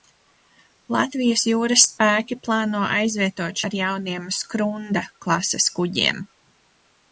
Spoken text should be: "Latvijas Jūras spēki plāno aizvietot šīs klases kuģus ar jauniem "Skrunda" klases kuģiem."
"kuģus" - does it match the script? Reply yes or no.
no